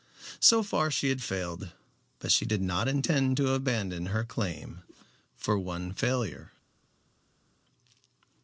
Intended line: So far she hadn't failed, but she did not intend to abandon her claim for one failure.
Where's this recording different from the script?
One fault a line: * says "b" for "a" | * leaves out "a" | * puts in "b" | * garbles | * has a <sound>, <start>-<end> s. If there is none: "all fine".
* says "had" for "hadn't"